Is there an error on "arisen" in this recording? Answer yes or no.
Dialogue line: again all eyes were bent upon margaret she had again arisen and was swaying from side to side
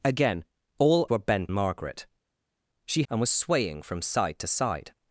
yes